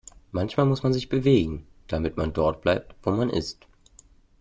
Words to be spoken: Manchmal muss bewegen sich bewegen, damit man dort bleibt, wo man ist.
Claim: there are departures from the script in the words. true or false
true